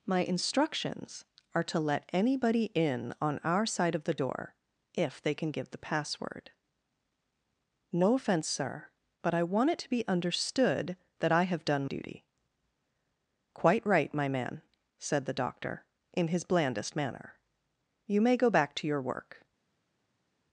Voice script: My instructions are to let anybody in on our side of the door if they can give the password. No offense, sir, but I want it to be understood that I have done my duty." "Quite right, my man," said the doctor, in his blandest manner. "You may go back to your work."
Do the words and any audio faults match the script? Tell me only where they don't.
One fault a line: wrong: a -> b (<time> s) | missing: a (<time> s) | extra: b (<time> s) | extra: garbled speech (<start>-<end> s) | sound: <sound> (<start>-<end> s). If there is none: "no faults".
missing: my (11.9 s)